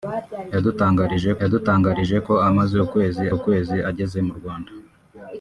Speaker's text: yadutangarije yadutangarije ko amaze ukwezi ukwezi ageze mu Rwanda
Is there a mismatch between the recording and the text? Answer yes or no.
no